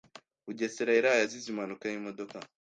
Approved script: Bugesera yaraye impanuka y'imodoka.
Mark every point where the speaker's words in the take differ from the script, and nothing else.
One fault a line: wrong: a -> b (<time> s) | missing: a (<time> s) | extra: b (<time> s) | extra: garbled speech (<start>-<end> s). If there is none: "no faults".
extra: azize (1.2 s)